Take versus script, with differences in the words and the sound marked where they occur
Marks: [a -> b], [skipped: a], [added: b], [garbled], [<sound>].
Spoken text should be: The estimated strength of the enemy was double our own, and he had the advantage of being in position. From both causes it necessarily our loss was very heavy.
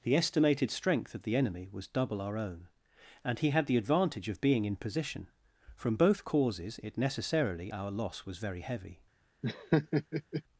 The estimated strength of the enemy was double our own, and he had the advantage of being in position. From both causes it necessarily our loss was very heavy. [laugh]